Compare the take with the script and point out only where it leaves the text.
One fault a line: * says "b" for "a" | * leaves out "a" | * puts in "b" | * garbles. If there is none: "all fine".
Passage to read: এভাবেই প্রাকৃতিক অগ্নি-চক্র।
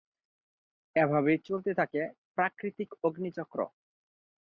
* puts in "চলতে থাকে"